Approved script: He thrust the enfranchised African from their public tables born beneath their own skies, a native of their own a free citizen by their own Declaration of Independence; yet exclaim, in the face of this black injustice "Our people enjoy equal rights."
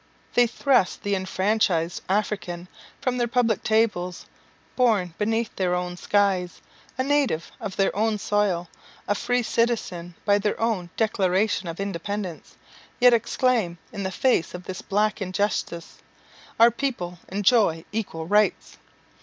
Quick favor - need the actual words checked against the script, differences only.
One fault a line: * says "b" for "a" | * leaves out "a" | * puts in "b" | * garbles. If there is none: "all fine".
* says "They" for "He"
* puts in "soil"